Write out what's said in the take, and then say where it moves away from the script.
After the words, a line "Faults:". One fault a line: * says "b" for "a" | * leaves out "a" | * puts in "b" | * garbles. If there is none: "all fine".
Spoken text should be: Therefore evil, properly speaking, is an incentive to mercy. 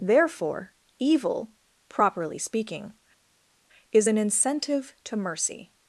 Therefore evil, properly speaking, is an incentive to mercy.
Faults:
all fine